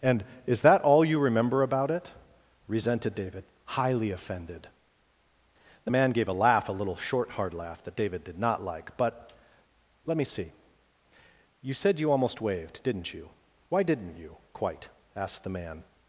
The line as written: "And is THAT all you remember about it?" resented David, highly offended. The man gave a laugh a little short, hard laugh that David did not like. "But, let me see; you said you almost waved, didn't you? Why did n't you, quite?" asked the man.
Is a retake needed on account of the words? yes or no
no